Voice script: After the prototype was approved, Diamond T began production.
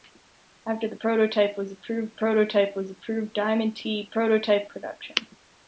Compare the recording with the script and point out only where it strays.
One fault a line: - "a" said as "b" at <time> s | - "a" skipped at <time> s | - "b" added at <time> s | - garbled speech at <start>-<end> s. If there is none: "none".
- "prototype was approved" added at 2.1 s
- "began" said as "prototype" at 4.0 s